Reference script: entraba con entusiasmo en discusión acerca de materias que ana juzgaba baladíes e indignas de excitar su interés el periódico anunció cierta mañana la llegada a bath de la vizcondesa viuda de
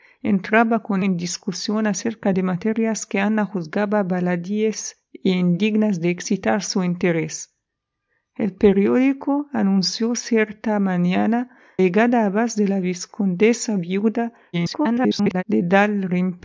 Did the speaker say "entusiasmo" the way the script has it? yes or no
no